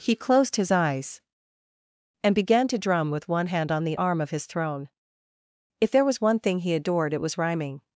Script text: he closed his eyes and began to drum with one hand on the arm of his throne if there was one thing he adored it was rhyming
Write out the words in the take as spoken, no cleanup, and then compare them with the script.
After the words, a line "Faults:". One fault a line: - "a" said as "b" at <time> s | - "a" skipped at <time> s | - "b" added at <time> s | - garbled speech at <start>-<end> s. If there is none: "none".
he closed his eyes and began to drum with one hand on the arm of his throne if there was one thing he adored it was rhyming
Faults:
none